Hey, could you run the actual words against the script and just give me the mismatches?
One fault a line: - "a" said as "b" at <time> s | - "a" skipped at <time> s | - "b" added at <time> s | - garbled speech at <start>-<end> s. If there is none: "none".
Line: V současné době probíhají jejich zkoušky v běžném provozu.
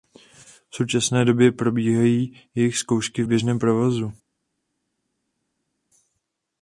none